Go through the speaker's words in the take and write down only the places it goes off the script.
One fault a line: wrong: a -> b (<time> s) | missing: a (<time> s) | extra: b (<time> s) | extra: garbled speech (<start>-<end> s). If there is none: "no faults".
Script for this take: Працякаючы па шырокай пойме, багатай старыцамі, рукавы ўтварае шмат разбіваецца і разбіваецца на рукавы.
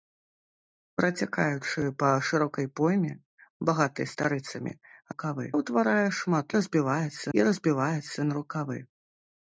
no faults